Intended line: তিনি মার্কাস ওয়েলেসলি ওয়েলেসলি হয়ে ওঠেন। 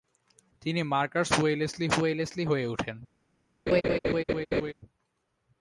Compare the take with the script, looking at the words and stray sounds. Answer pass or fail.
fail